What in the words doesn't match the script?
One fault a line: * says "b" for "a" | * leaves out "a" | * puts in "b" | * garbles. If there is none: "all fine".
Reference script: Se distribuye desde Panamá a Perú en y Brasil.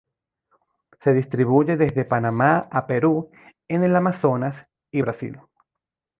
* puts in "el Amazonas"